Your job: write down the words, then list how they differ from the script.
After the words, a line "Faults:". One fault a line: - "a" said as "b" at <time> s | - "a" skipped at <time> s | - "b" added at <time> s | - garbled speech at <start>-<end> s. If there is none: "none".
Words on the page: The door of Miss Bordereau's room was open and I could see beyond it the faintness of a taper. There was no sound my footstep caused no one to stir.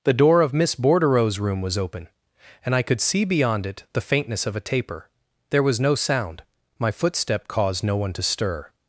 The door of Miss Bordereau's room was open and I could see beyond it the faintness of a taper. There was no sound my footstep caused no one to stir.
Faults:
none